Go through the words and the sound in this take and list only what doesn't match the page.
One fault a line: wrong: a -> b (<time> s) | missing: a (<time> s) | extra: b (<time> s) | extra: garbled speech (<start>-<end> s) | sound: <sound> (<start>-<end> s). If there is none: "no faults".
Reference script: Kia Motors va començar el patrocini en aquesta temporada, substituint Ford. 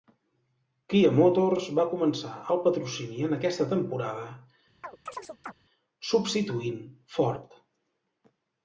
sound: chirp (4.8-5.5 s)